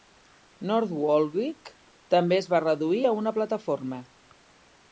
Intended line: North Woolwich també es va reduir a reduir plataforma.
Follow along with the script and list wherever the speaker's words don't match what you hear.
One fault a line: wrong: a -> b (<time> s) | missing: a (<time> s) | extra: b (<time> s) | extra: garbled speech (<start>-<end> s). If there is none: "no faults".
wrong: reduir -> una (3.2 s)